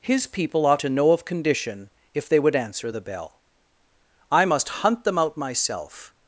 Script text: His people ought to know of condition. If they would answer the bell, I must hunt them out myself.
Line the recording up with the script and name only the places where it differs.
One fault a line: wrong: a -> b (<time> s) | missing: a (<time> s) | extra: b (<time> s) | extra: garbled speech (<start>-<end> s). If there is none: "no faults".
no faults